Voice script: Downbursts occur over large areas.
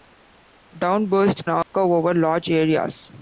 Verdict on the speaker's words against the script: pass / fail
pass